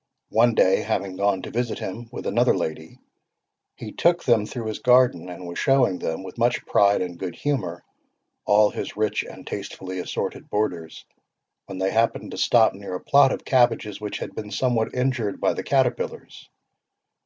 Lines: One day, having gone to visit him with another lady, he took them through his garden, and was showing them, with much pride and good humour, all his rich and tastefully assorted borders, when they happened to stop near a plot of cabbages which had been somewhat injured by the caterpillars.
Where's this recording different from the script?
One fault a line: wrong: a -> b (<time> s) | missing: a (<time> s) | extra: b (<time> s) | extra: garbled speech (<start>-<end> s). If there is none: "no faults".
no faults